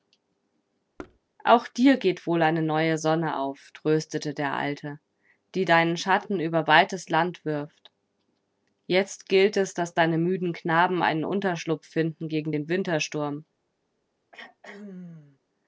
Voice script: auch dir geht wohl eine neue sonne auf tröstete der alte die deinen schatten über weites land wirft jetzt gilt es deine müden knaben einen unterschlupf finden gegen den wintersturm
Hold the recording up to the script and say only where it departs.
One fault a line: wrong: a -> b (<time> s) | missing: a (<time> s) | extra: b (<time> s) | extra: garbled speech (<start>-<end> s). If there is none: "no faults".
extra: daß (9.7 s)